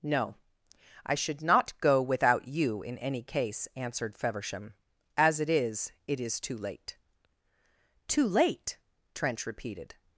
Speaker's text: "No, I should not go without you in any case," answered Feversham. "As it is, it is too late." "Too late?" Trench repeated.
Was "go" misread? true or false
false